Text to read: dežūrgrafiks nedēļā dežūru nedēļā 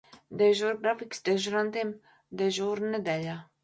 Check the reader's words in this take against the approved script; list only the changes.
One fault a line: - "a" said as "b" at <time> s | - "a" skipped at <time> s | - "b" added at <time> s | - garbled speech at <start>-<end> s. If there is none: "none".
- "nedēļā" said as "dežurantiem" at 1.3 s